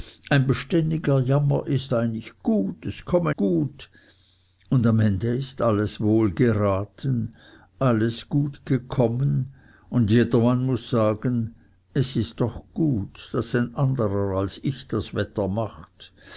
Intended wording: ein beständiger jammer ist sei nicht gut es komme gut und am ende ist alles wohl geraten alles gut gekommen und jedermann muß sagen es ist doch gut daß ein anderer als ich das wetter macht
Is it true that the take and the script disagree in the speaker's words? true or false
false